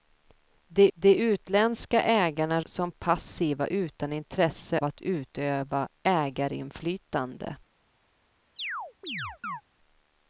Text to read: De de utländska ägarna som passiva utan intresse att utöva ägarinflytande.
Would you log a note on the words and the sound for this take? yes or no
yes